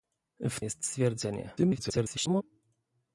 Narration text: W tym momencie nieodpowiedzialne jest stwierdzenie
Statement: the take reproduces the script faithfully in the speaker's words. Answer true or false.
false